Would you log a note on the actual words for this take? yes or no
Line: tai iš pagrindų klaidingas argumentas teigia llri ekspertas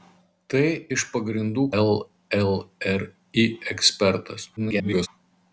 yes